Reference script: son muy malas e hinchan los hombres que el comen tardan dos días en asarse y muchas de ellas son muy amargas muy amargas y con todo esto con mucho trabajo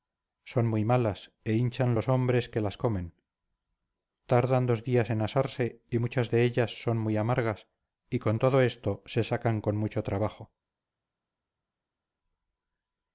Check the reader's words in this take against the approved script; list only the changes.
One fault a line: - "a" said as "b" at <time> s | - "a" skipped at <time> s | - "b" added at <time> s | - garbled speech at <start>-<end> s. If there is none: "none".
- "el" said as "las" at 2.6 s
- "muy amargas" skipped at 7.7 s
- "se sacan" added at 9.1 s